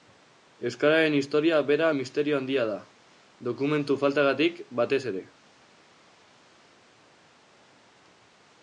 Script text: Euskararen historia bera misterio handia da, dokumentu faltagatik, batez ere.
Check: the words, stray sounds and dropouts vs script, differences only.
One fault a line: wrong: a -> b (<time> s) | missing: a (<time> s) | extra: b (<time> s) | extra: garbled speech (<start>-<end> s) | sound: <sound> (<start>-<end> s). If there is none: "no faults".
no faults